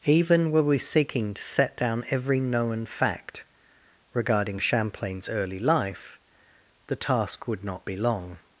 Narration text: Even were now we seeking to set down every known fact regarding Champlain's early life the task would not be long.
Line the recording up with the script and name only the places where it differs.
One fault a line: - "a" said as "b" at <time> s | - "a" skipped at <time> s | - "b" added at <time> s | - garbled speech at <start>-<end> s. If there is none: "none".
- "now" skipped at 0.6 s